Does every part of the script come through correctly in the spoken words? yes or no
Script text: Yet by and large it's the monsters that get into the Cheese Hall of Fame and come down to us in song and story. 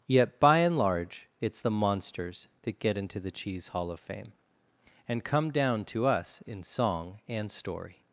yes